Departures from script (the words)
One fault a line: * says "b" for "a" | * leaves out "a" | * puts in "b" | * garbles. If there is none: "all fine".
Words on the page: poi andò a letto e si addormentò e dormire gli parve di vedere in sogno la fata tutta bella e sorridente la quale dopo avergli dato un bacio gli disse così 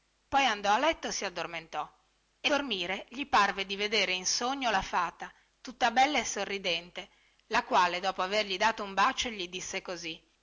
all fine